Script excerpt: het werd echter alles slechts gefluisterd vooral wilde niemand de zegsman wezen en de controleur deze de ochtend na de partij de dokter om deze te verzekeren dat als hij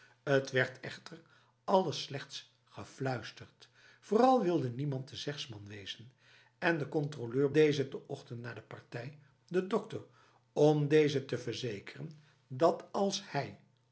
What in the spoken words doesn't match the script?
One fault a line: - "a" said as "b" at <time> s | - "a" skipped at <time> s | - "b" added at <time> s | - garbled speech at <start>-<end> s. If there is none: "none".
none